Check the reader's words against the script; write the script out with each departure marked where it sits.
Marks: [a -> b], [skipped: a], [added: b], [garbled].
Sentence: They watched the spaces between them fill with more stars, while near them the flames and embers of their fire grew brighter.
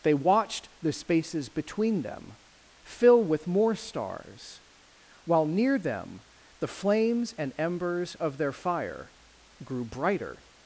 They watched the spaces between them fill with more stars, while near them the flames and embers of their fire grew brighter.